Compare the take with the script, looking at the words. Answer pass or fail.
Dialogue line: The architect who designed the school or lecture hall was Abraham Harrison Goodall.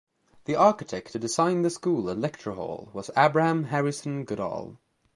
fail